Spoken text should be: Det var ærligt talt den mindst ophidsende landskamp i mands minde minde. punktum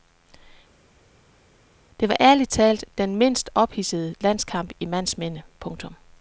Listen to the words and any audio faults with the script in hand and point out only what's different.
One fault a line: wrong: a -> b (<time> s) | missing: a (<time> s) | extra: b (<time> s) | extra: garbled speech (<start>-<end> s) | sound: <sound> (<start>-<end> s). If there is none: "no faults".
missing: minde (5.4 s)